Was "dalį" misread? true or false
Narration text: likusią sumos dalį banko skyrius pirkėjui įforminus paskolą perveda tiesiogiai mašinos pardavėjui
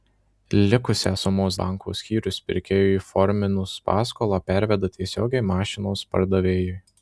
true